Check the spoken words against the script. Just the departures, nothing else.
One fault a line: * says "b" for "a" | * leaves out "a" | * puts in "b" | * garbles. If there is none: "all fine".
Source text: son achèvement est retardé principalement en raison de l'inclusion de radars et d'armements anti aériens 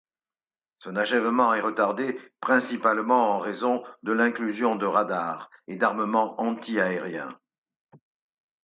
all fine